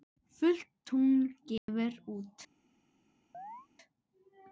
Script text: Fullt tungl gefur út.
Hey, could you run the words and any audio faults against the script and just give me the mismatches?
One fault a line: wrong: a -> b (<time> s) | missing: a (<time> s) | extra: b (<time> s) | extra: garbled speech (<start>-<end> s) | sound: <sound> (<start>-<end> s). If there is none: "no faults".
sound: dropout (1.6-1.7 s)
sound: chirp (3.3-3.7 s)